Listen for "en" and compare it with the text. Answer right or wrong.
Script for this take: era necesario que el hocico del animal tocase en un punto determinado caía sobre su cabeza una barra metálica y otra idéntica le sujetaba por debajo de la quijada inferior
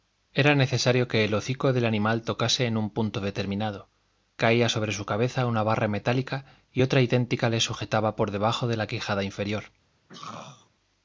right